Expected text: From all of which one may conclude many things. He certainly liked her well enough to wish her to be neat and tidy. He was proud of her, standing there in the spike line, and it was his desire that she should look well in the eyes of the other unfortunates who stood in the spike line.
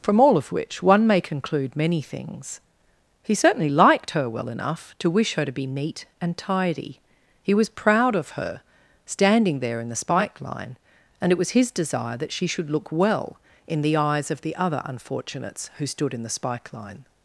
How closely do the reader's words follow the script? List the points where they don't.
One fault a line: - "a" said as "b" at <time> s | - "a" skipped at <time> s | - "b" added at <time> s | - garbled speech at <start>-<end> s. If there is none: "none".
none